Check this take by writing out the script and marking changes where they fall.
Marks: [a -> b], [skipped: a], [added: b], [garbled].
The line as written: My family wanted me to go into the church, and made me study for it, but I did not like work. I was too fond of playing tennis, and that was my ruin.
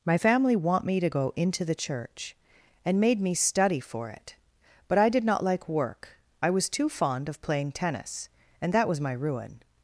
My family [wanted -> want] me to go into the church, and made me study for it, but I did not like work. I was too fond of playing tennis, and that was my ruin.